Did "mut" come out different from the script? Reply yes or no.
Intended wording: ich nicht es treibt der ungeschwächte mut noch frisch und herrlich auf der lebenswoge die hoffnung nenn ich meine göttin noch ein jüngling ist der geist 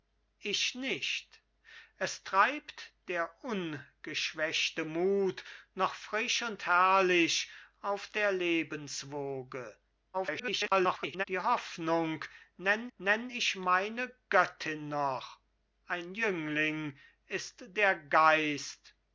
no